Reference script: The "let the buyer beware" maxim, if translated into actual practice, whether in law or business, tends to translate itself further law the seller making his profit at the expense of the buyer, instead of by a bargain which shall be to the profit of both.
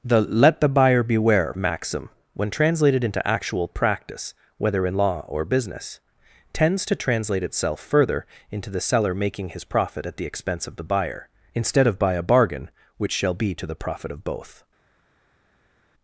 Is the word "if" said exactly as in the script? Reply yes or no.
no